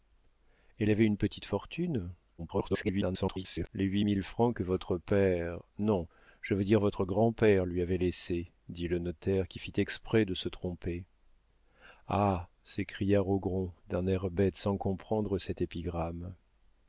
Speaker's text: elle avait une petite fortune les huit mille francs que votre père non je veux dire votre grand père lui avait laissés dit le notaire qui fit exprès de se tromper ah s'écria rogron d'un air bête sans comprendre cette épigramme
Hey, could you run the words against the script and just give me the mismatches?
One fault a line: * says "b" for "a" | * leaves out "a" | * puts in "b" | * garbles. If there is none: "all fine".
* garbles